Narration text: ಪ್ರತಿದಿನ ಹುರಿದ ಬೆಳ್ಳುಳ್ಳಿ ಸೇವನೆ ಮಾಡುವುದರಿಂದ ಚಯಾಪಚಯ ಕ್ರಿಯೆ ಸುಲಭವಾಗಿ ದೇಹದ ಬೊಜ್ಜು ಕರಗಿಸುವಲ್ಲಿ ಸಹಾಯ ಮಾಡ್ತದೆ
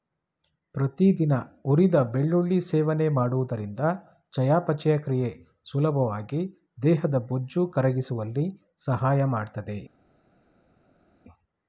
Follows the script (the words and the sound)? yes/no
yes